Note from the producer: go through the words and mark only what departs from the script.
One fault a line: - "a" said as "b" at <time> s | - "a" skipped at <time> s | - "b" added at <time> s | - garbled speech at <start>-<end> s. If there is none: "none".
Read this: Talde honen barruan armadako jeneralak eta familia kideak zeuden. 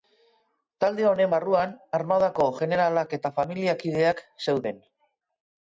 none